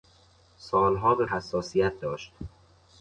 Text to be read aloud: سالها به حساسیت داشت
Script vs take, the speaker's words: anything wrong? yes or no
no